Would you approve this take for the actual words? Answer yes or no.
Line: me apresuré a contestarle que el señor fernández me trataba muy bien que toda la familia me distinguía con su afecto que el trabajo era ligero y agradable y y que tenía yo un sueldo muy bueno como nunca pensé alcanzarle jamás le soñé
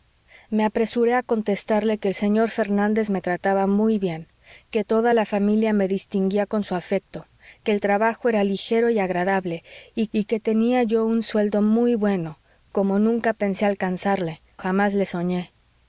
yes